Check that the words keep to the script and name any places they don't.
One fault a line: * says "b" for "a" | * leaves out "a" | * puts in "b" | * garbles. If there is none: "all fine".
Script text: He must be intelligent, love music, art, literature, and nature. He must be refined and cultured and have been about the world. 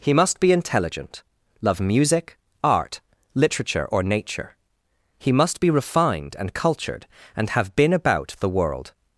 * says "or" for "and"